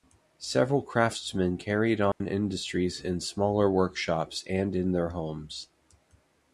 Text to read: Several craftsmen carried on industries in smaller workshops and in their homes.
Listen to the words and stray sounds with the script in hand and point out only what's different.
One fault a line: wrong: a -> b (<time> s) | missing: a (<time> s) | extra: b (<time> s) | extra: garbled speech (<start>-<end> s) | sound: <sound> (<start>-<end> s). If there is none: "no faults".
sound: dropout (2.1-2.2 s)